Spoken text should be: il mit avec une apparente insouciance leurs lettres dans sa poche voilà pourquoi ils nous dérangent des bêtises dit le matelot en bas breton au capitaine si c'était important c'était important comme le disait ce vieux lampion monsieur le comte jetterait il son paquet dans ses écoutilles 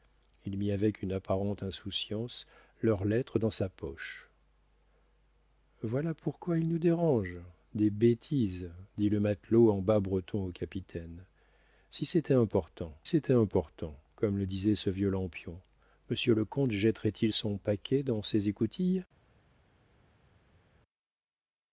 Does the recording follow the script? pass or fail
pass